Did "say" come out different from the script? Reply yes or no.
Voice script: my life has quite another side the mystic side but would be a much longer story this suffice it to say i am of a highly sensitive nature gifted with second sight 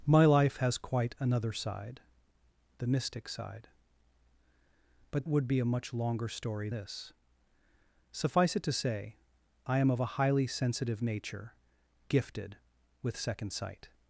no